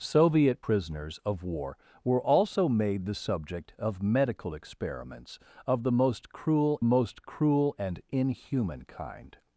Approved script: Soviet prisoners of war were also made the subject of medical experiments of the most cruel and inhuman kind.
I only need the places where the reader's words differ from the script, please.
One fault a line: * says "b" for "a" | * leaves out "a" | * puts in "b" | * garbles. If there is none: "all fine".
* puts in "most cruel"